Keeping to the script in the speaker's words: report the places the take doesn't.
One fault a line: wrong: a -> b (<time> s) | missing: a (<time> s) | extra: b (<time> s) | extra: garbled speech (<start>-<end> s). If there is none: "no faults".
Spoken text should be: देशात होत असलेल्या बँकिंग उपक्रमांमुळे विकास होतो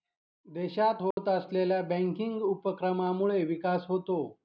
no faults